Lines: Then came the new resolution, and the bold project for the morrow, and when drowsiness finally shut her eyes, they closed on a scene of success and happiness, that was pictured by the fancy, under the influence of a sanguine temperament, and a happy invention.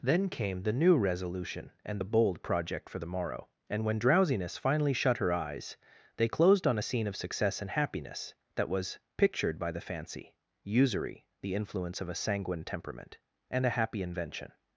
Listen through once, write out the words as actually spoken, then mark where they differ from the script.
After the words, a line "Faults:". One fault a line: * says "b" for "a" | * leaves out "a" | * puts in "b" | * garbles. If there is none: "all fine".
Then came the new resolution, and the bold project for the morrow, and when drowsiness finally shut her eyes, they closed on a scene of success and happiness, that was pictured by the fancy, usury the influence of a sanguine temperament, and a happy invention.
Faults:
* says "usury" for "under"